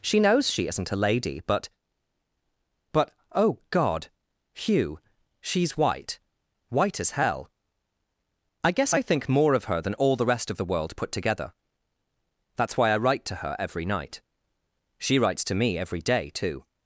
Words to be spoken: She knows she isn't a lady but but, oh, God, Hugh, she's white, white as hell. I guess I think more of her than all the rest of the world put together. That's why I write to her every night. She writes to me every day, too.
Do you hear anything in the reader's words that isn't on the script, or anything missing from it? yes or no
no